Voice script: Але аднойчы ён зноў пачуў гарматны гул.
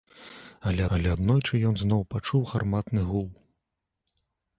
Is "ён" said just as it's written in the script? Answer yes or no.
yes